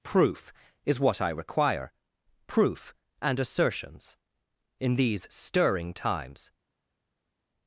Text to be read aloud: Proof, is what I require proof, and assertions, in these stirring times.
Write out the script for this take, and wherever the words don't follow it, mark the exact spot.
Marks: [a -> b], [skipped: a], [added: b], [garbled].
Proof, is what I require proof, and assertions, in these stirring times.